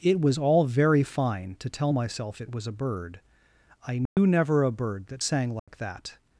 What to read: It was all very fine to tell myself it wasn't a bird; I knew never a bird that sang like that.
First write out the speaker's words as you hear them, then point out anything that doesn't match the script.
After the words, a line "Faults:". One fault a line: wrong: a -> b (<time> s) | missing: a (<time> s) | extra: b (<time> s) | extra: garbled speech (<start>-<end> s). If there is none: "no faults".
It was all very fine to tell myself it was a bird; I knew never a bird that sang like that.
Faults:
wrong: wasn't -> was (2.5 s)